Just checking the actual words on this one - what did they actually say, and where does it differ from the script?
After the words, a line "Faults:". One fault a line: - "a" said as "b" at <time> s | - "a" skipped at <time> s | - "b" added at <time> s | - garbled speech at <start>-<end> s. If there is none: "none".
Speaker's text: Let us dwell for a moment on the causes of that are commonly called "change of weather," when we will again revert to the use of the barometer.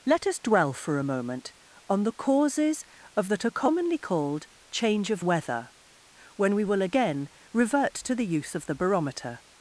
Let us dwell for a moment on the causes of that are commonly called "change of weather," when we will again revert to the use of the barometer.
Faults:
none